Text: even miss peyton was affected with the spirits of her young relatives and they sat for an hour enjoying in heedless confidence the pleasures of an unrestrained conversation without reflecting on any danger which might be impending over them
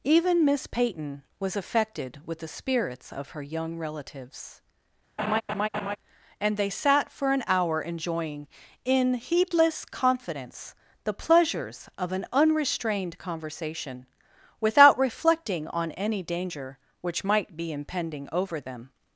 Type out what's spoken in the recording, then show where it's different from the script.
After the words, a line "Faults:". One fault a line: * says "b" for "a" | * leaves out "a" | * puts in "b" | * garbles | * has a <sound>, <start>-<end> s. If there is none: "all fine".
even miss peyton was affected with the spirits of her young relatives and they sat for an hour enjoying in heedless confidence the pleasures of an unrestrained conversation without reflecting on any danger which might be impending over them
Faults:
* has a laugh, 5.2-6.0 s